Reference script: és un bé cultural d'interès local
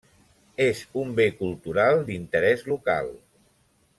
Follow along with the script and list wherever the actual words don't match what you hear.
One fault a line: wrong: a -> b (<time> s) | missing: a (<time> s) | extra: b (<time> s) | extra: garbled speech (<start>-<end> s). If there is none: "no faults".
no faults